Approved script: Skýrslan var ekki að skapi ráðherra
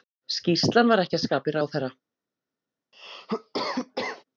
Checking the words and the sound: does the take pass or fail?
fail